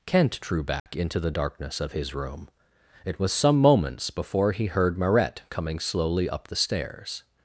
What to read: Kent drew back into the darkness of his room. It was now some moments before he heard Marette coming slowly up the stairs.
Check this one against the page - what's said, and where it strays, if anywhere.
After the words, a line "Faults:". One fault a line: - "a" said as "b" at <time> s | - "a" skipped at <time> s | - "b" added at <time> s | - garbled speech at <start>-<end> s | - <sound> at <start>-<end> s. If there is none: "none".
Kent drew back into the darkness of his room. It was some moments before he heard Marette coming slowly up the stairs.
Faults:
- dropout at 0.8-0.9 s
- "now" skipped at 3.3 s